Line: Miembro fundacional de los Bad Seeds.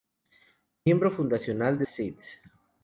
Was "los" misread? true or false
true